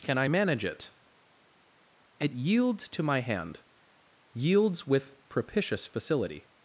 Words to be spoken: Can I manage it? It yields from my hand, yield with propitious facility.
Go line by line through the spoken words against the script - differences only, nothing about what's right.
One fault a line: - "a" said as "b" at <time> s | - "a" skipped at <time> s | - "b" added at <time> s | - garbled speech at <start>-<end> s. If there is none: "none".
- "from" said as "to" at 2.9 s
- "yield" said as "yields" at 4.3 s